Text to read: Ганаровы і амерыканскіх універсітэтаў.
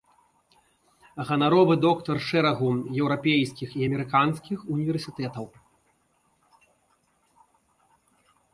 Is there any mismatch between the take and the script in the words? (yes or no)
yes